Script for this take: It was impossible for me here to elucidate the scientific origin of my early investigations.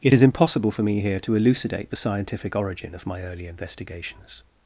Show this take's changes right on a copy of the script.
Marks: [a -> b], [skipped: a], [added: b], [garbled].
It [was -> is] impossible for me here to elucidate the scientific origin of my early investigations.